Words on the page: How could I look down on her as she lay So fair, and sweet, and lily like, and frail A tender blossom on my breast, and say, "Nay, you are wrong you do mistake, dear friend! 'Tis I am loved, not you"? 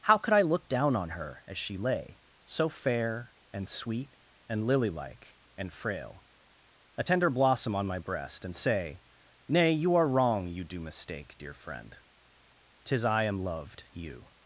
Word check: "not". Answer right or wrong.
wrong